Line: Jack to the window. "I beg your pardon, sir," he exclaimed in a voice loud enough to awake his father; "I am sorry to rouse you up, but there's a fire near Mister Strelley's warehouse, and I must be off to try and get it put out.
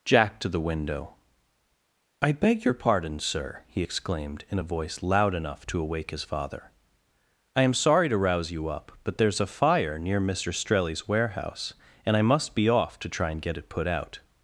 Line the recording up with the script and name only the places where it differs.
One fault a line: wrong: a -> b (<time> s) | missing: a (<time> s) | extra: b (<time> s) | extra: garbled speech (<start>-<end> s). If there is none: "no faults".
no faults